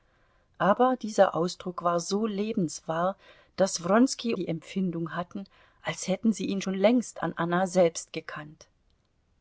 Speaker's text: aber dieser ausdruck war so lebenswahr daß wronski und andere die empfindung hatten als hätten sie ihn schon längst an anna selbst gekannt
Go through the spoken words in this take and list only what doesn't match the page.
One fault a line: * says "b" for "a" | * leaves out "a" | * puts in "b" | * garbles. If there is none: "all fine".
* leaves out "und andere"